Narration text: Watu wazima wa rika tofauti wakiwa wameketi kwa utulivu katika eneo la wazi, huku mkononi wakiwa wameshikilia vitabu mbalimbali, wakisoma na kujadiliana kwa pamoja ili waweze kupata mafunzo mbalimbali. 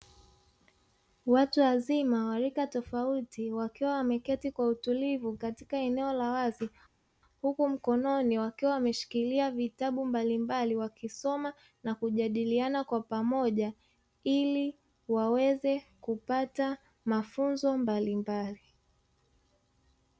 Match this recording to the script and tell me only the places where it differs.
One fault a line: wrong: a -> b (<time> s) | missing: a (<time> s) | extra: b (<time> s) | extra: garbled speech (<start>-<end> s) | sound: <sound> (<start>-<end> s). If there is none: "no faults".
no faults